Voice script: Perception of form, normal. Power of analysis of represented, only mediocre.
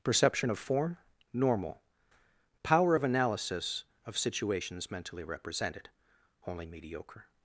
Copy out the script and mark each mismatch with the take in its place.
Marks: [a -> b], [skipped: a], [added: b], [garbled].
Perception of form, normal. Power of analysis of [added: situations mentally] represented, only mediocre.